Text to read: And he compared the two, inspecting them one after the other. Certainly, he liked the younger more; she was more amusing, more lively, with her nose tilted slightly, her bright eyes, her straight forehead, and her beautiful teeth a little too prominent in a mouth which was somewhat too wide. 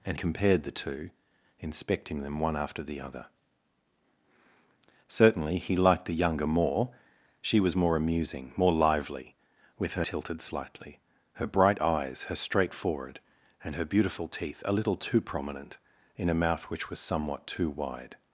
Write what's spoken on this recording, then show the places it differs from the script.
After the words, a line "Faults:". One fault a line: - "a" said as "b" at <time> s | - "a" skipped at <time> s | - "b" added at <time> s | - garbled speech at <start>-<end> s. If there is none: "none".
And compared the two, inspecting them one after the other. Certainly, he liked the younger more; she was more amusing, more lively, with her tilted slightly, her bright eyes, her straight forehead, and her beautiful teeth a little too prominent in a mouth which was somewhat too wide.
Faults:
- "he" skipped at 0.2 s
- "nose" skipped at 10.0 s